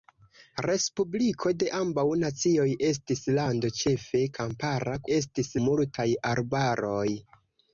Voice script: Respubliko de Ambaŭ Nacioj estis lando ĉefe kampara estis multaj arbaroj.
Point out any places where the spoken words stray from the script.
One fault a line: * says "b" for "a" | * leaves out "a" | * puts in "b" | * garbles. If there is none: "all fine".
all fine